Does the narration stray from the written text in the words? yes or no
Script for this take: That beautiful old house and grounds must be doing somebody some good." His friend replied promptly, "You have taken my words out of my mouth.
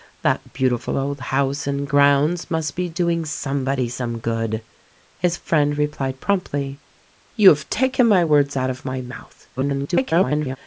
yes